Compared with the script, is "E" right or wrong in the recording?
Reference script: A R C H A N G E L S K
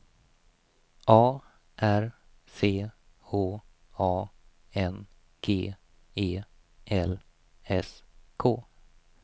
right